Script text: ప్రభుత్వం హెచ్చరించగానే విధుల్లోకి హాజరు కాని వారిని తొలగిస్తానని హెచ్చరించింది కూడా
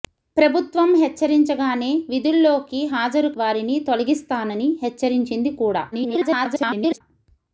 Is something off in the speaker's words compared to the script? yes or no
yes